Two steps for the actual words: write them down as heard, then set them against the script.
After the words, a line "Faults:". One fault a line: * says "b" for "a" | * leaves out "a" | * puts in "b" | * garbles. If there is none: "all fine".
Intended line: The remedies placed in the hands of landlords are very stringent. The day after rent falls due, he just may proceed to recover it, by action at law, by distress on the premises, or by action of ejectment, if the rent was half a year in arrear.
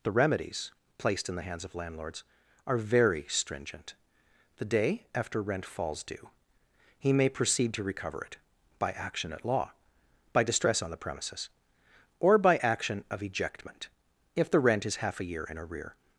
The remedies placed in the hands of landlords are very stringent. The day after rent falls due, he may proceed to recover it, by action at law, by distress on the premises, or by action of ejectment, if the rent is half a year in arrear.
Faults:
* leaves out "just"
* says "is" for "was"